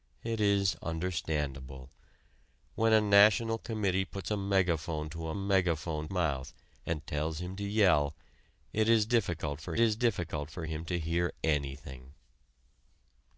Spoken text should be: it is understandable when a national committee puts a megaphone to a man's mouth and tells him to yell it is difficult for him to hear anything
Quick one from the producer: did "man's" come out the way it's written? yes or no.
no